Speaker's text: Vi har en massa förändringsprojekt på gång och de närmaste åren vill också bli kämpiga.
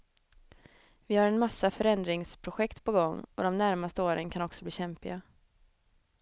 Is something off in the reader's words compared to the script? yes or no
yes